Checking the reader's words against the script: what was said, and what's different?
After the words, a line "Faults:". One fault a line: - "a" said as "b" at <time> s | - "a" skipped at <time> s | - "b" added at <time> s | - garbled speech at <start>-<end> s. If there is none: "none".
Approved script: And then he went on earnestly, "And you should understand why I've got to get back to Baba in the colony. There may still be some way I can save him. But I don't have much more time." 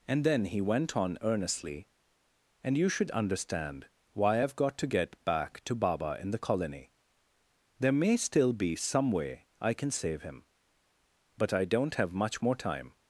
And then he went on earnestly, "And you should understand why I've got to get back to Baba in the colony. There may still be some way I can save him. But I don't have much more time."
Faults:
none